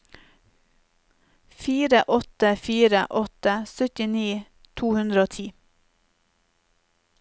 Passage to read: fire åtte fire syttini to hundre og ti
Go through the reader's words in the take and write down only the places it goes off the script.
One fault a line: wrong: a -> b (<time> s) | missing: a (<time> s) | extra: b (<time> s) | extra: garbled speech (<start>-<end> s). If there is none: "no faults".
extra: åtte (3.1 s)